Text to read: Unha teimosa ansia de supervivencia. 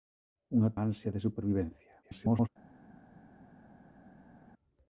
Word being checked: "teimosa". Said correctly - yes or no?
no